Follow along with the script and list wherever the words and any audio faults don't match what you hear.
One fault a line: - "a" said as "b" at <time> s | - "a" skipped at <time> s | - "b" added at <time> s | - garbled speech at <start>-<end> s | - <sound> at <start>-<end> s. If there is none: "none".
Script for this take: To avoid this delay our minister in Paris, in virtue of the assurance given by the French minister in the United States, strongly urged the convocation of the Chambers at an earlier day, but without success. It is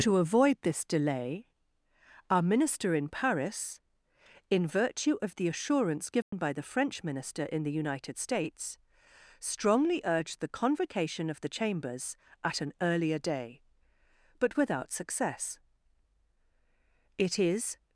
- dropout at 6.2-6.3 s